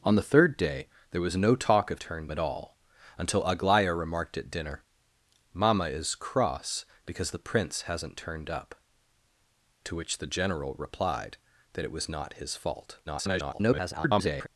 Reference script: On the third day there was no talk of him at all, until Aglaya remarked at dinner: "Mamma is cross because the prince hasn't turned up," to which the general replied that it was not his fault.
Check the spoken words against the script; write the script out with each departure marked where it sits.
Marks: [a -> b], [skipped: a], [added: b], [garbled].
On the third day there was no talk of [him -> turned] at all, until Aglaya remarked at dinner: "Mamma is cross because the prince hasn't turned up," to which the general replied that it was not his fault. [garbled]